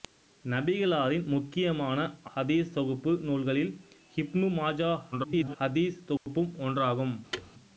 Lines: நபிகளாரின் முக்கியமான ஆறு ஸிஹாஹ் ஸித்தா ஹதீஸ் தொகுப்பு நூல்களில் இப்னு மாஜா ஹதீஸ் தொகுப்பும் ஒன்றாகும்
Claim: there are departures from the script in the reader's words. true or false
true